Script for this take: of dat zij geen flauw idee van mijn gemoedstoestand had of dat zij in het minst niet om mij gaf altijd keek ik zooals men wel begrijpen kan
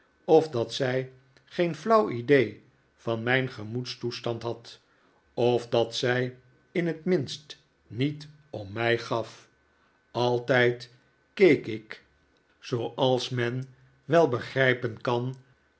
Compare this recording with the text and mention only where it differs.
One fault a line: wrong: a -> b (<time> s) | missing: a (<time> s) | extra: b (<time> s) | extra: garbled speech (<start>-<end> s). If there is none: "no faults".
no faults